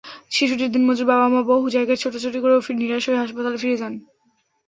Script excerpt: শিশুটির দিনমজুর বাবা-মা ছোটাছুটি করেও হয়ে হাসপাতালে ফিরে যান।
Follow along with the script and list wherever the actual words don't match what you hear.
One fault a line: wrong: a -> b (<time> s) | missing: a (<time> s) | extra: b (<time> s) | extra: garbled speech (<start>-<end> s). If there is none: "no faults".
extra: বহু জায়গায় (1.4 s)
extra: নিরাশ (2.8 s)